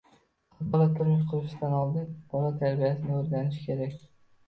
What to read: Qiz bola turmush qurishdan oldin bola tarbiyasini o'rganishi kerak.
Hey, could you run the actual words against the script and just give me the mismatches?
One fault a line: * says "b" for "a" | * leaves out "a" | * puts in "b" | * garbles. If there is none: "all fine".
all fine